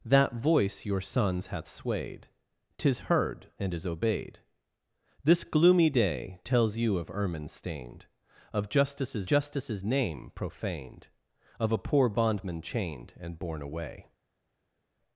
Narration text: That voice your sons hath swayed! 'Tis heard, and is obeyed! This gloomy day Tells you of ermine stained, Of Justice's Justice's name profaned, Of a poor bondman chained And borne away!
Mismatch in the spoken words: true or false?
false